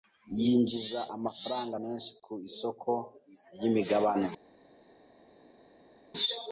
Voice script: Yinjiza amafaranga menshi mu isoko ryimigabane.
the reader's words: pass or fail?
fail